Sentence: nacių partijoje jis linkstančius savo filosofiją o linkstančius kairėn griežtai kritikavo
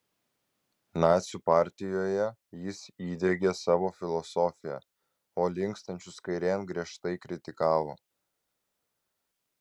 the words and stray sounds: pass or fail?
fail